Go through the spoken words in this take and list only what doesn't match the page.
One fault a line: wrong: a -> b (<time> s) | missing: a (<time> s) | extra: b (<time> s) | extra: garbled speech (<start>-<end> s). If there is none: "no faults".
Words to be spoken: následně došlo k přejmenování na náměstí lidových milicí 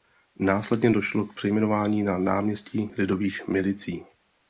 no faults